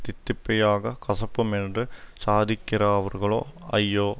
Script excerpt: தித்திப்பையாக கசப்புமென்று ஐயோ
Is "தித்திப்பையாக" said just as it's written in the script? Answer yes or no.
yes